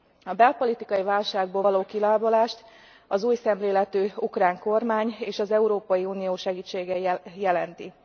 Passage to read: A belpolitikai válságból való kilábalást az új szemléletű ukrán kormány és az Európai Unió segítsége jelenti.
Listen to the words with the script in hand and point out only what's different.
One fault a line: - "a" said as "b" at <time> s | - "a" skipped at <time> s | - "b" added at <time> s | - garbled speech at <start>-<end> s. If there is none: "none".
none